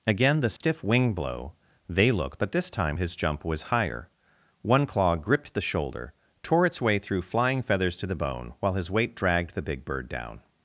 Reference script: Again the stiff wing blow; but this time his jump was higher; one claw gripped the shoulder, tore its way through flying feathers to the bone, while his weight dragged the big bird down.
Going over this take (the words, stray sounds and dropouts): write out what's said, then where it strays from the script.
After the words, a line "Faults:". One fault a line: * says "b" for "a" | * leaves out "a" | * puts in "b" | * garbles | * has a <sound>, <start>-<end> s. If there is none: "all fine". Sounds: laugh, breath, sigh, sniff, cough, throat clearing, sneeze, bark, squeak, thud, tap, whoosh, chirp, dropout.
Again the stiff wing blow; they look but this time his jump was higher; one claw gripped the shoulder, tore its way through flying feathers to the bone, while his weight dragged the big bird down.
Faults:
* has a dropout, 0.6-0.6 s
* puts in "they look"